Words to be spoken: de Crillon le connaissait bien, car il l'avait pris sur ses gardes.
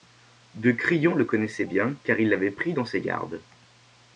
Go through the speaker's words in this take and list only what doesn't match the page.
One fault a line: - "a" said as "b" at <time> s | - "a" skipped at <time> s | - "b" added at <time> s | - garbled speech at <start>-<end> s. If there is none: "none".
- "sur" said as "dans" at 2.7 s